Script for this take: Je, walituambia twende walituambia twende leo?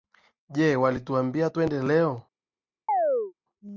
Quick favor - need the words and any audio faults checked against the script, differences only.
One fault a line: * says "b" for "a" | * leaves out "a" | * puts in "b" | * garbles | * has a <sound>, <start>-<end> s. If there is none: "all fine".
* leaves out "walituambia twende"
* has a chirp, 2.9-3.3 s